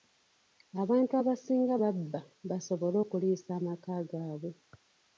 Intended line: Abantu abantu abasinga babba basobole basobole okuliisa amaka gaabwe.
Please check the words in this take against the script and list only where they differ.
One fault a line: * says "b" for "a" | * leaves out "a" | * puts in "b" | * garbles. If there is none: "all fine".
* leaves out "abantu"
* leaves out "basobole"